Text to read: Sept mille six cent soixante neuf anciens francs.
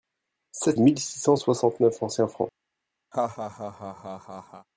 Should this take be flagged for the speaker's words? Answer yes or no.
no